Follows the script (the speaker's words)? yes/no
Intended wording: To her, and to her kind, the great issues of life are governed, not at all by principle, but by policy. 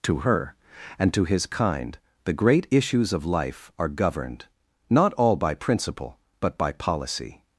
no